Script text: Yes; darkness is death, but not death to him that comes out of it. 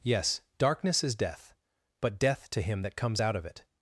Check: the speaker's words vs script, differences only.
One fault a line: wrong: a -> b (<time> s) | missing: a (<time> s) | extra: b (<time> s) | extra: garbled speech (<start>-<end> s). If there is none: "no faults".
missing: not (2.2 s)